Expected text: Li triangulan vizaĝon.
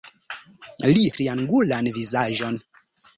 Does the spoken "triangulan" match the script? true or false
true